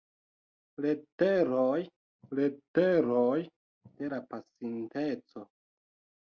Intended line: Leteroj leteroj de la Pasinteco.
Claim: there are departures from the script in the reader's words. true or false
false